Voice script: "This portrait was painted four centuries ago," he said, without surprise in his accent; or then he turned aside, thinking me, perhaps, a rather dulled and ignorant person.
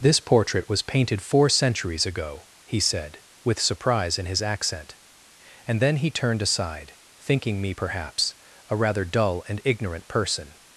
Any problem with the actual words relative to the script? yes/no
yes